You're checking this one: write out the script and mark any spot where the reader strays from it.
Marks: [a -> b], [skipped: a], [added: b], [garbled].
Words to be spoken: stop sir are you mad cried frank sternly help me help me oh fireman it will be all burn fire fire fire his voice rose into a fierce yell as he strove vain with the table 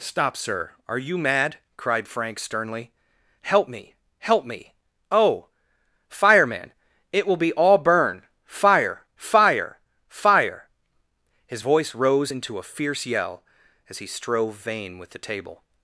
stop sir are you mad cried frank sternly help me help me oh fireman it will be all burn fire fire fire his voice rose into a fierce yell as he strove vain with the table